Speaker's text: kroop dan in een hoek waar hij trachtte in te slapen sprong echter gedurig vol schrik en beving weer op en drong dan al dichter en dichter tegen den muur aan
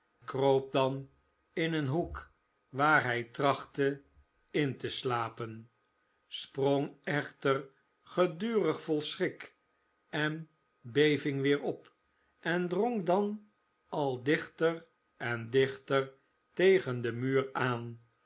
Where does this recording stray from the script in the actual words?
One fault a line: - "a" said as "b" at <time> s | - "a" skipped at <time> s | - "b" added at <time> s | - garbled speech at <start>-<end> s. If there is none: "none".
none